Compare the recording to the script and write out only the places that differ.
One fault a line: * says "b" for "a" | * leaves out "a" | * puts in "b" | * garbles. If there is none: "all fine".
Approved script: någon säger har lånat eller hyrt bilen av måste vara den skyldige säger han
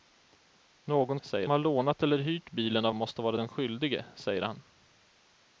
all fine